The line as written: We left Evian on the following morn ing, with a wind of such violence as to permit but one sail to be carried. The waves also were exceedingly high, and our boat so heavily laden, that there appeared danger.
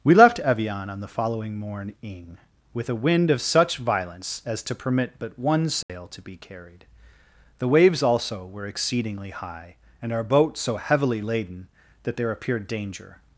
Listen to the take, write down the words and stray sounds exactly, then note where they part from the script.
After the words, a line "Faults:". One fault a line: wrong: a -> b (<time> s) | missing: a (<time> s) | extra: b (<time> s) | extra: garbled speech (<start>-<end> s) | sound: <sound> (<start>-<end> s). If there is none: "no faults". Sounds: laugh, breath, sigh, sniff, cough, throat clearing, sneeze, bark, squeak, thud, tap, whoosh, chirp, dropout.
We left Evian on the following morn ing, with a wind of such violence as to permit but one sail to be carried. The waves also were exceedingly high, and our boat so heavily laden, that there appeared danger.
Faults:
sound: dropout (5.8-5.9 s)